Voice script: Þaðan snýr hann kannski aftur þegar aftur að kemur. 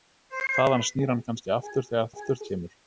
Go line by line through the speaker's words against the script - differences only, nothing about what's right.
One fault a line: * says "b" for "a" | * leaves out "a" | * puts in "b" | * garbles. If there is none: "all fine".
all fine